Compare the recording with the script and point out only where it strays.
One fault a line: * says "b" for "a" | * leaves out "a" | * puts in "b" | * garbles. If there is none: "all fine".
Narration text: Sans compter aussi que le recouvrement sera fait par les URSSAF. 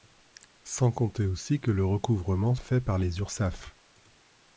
* leaves out "sera"